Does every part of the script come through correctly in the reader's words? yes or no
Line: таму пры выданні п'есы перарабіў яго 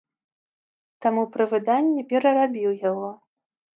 no